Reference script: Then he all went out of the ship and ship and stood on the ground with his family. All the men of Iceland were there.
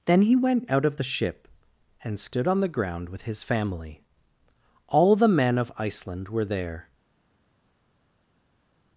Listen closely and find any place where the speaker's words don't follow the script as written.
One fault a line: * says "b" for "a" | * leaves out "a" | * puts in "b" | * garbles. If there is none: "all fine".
* leaves out "all"
* leaves out "ship and"